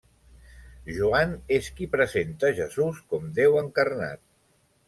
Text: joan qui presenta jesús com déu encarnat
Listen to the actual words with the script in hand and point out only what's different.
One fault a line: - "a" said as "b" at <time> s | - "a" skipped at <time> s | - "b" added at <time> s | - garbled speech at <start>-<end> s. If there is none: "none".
- "és" added at 1.6 s